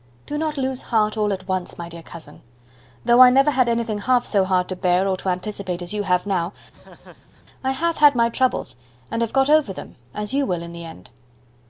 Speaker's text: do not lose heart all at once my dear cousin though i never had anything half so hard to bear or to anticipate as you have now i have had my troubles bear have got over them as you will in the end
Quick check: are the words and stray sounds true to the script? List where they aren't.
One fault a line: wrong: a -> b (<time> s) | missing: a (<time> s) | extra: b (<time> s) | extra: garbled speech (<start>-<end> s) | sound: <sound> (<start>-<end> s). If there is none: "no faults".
sound: laugh (6.7-7.5 s)
wrong: bear -> and (9.1 s)